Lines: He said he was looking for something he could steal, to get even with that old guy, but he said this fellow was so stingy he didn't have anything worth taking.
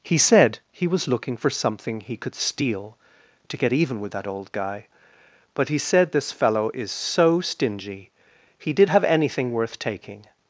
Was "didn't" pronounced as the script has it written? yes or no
no